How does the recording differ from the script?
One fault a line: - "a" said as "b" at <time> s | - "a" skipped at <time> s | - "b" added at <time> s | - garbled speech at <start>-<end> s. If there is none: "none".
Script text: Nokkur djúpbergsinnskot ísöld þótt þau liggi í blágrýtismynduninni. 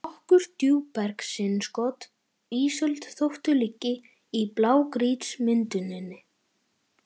none